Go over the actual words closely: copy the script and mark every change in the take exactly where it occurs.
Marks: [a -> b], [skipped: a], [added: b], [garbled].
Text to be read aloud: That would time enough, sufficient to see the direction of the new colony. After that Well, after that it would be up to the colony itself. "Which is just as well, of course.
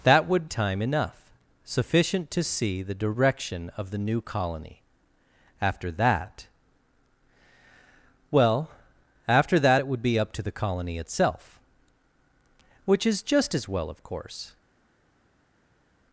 That would time enough, sufficient to see the direction of the new colony. After that Well, after that it would be up to the colony itself. "Which is just as well, of course.